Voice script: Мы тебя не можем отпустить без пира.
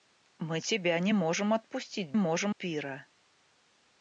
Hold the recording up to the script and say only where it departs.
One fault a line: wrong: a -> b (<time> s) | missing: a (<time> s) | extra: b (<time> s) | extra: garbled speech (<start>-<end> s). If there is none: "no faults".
wrong: без -> можем (2.1 s)